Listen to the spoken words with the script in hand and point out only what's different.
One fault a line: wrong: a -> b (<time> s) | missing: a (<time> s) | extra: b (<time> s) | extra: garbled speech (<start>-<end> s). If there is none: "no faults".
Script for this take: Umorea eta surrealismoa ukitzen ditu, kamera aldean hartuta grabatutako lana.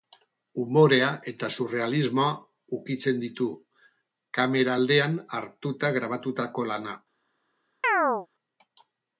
no faults